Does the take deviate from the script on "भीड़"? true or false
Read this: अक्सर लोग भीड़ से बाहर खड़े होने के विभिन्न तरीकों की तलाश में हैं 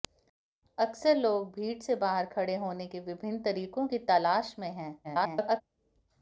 false